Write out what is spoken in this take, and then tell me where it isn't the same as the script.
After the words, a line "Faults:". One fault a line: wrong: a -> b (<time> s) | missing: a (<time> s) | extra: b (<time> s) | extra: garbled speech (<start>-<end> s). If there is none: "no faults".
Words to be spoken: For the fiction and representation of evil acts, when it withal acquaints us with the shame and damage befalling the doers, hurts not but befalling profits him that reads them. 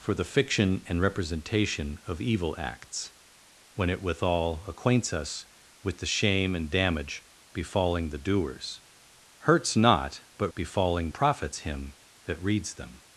For the fiction and representation of evil acts, when it withal acquaints us with the shame and damage befalling the doers, hurts not but befalling profits him that reads them.
Faults:
no faults